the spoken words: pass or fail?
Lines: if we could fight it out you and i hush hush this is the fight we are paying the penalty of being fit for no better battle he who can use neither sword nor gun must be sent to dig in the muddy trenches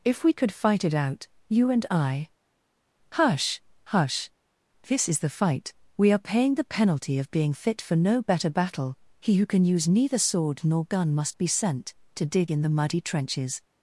pass